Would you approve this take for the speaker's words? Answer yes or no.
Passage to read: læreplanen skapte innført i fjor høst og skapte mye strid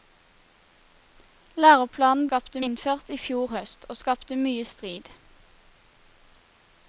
yes